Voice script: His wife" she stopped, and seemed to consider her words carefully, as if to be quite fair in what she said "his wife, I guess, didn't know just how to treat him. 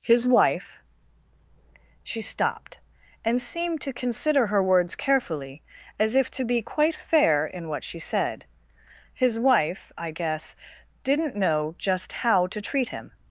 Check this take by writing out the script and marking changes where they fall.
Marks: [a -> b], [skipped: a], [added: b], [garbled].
His wife" she stopped, and seemed to consider her words carefully, as if to be quite fair in what she said "his wife, I guess, didn't know just how to treat him.